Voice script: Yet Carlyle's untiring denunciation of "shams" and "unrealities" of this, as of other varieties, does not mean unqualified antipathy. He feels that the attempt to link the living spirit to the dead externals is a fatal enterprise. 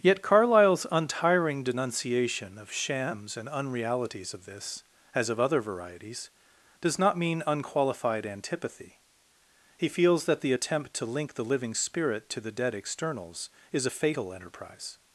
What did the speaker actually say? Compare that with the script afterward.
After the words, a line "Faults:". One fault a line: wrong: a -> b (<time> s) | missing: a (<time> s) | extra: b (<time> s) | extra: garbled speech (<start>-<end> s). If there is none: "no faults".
Yet Carlyle's untiring denunciation of "shams" and "unrealities" of this, as of other varieties, does not mean unqualified antipathy. He feels that the attempt to link the living spirit to the dead externals is a fatal enterprise.
Faults:
no faults